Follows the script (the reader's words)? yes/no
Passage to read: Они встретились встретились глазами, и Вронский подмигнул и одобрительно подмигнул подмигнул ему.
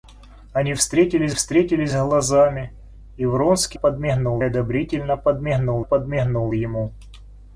yes